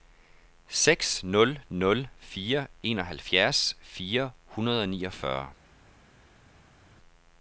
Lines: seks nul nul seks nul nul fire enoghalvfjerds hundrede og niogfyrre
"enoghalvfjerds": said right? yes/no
no